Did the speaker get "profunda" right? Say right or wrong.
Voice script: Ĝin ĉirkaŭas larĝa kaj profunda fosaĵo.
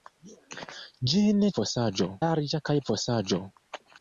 wrong